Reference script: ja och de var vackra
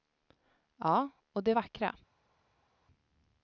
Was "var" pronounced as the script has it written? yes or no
no